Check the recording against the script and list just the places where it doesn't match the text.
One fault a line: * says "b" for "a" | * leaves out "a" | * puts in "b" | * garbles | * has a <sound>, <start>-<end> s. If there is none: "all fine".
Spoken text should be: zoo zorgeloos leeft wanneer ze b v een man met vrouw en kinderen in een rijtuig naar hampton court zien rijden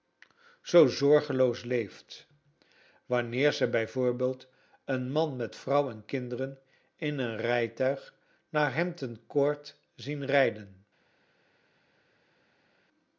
all fine